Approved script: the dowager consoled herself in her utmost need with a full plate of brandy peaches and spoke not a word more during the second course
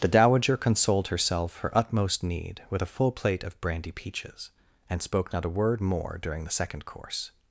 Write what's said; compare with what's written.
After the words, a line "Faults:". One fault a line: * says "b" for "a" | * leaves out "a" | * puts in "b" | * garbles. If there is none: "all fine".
the dowager consoled herself her utmost need with a full plate of brandy peaches and spoke not a word more during the second course
Faults:
* leaves out "in"